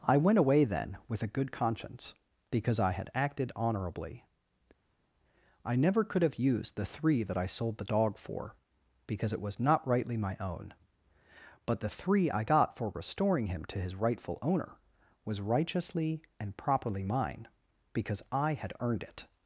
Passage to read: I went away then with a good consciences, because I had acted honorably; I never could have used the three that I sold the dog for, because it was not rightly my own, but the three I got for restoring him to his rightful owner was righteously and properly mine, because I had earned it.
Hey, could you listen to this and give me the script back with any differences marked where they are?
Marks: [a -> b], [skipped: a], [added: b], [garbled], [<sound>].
I went away then with a good [consciences, -> conscience] because I had acted honorably; I never could have used the three that I sold the dog for, because it was not rightly my own, but the three I got for restoring him to his rightful owner was righteously and properly mine, because I had earned it.